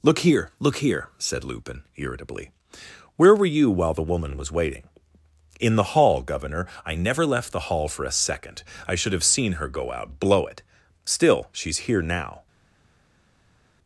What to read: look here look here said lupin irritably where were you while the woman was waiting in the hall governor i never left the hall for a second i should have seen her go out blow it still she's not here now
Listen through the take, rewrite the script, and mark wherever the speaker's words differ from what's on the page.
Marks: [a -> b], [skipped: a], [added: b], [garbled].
look here look here said lupin irritably where were you while the woman was waiting in the hall governor i never left the hall for a second i should have seen her go out blow it still she's [skipped: not] here now